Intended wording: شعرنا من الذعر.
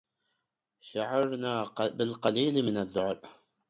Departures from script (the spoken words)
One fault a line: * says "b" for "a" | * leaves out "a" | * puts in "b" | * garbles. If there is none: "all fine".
* puts in "بالقليل"